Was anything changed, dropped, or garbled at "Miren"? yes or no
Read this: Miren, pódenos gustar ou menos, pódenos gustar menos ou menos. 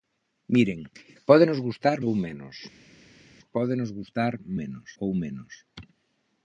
no